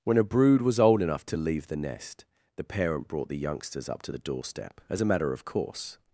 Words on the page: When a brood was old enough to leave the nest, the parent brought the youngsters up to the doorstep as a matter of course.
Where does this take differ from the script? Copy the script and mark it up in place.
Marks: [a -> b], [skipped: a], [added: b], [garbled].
When a brood was old enough to leave the nest, the parent brought the youngsters up to the doorstep as a matter of course.